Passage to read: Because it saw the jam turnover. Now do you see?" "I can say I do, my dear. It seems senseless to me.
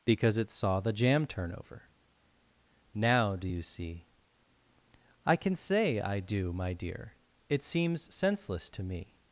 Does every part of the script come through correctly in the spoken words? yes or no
yes